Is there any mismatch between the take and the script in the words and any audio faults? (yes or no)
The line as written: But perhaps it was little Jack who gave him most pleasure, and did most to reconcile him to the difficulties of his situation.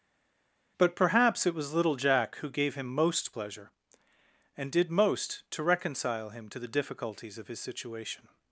no